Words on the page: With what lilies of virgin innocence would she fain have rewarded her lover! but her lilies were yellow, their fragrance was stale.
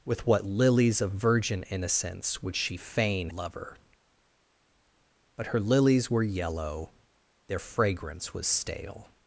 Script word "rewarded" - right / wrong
wrong